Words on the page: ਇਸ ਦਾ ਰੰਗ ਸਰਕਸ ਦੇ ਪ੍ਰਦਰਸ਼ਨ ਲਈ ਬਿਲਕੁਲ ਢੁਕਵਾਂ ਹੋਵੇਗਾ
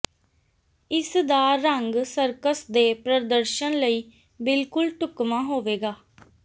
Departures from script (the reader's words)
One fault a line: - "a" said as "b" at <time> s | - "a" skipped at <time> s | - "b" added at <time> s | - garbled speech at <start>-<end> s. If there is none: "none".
none